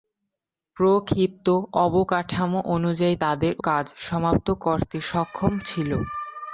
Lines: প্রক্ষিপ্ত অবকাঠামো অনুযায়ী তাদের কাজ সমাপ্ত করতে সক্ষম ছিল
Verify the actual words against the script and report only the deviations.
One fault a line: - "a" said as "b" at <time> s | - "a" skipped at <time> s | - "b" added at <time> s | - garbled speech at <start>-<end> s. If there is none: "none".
none